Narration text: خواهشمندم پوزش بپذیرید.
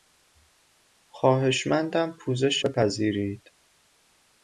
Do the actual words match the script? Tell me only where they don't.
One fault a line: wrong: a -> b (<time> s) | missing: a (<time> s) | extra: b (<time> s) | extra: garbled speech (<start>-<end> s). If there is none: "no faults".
no faults